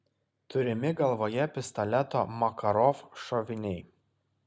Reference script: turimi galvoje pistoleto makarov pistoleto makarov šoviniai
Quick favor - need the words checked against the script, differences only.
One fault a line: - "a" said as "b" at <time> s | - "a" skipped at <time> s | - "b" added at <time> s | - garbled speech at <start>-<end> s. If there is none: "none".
- "pistoleto makarov" skipped at 3.1 s